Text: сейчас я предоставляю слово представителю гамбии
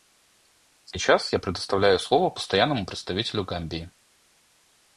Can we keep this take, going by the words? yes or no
no